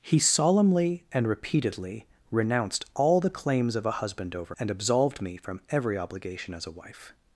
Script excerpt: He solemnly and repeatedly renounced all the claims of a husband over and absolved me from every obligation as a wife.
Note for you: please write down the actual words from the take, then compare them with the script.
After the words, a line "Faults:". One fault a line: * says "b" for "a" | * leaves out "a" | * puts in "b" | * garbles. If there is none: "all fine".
He solemnly and repeatedly renounced all the claims of a husband over and absolved me from every obligation as a wife.
Faults:
all fine